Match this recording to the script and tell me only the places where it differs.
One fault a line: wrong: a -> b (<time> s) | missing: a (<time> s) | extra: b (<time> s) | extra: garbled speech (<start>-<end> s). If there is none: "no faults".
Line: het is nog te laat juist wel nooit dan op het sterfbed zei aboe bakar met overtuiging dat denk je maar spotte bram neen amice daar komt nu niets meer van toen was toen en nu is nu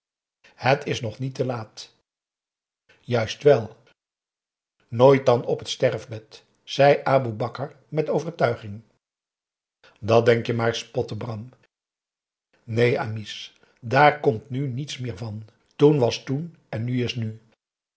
extra: niet (1.2 s)